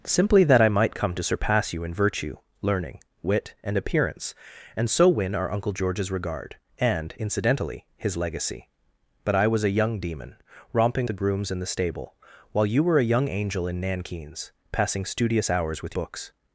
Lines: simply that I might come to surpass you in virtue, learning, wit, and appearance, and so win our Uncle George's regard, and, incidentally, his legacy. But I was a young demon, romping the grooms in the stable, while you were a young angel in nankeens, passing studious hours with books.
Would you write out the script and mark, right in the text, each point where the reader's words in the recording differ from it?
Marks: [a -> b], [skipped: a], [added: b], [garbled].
simply that I might come to surpass you in virtue, learning, wit, and appearance, and so win our Uncle George's regard, and, incidentally, his legacy. But I was a young demon, romping the grooms in the stable, while you were a young angel in nankeens, passing studious hours with books.